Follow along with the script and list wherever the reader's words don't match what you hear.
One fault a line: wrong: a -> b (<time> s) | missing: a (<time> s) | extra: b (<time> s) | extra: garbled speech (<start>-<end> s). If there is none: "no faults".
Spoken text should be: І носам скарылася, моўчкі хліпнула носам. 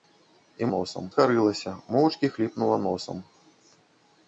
no faults